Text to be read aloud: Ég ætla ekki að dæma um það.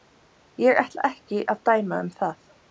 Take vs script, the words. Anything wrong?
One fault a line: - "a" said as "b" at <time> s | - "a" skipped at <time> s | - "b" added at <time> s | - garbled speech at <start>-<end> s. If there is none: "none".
none